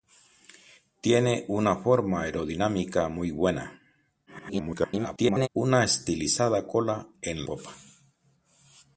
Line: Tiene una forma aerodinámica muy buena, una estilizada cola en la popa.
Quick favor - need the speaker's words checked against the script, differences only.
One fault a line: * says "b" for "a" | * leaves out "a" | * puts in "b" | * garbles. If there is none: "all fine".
* garbles
* leaves out "la"